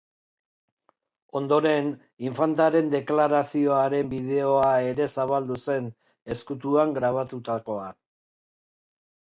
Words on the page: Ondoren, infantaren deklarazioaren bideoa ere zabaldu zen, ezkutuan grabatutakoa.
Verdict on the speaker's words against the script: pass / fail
pass